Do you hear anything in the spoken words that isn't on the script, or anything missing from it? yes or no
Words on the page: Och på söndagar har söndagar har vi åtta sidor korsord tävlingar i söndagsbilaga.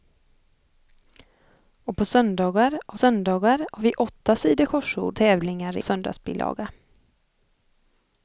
no